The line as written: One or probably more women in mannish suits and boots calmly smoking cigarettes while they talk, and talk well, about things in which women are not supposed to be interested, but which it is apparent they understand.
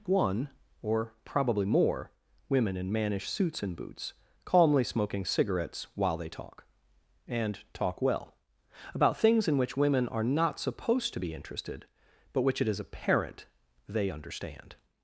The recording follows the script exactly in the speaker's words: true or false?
true